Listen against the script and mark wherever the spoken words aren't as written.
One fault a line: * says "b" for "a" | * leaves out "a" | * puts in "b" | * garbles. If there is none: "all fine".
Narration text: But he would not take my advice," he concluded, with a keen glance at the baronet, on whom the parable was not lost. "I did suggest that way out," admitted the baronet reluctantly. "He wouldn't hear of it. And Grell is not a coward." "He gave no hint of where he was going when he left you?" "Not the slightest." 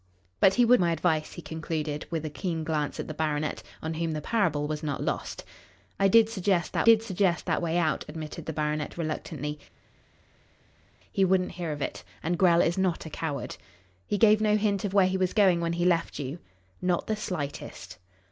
* leaves out "not take"
* puts in "did suggest that"